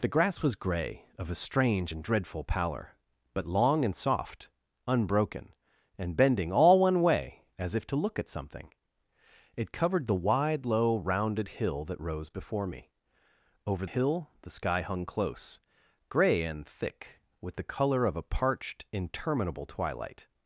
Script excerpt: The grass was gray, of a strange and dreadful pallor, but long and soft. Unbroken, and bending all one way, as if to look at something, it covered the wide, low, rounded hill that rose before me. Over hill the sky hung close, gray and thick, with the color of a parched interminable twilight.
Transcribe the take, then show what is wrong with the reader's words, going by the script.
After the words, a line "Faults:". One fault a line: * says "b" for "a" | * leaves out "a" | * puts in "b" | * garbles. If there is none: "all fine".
The grass was gray, of a strange and dreadful pallor, but long and soft. Unbroken, and bending all one way, as if to look at something, it covered the wide, low, rounded hill that rose before me. Over hill the sky hung close, gray and thick, with the color of a parched interminable twilight.
Faults:
all fine